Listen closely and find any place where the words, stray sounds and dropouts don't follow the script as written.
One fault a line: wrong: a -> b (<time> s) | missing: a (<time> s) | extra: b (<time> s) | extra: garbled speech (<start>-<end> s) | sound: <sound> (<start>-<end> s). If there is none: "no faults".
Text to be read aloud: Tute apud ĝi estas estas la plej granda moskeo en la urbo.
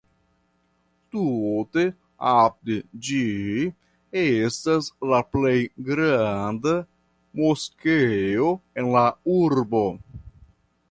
missing: estas (4.9 s)